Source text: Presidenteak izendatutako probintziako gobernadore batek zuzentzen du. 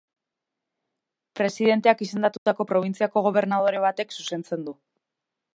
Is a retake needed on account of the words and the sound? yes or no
yes